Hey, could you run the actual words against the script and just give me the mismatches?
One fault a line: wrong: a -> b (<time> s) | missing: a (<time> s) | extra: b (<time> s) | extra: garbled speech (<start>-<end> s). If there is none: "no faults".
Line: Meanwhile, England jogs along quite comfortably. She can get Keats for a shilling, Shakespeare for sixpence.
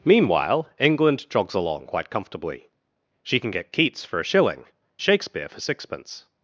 no faults